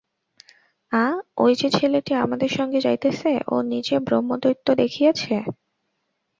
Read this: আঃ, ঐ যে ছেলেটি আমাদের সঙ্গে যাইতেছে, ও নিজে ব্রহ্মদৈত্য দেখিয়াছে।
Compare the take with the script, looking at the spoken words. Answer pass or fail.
pass